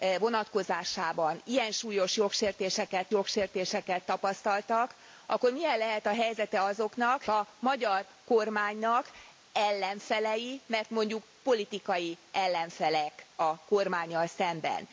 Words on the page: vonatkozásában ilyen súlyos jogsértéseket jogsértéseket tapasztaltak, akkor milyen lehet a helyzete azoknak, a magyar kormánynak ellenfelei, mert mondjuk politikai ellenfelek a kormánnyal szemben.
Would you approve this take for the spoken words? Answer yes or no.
yes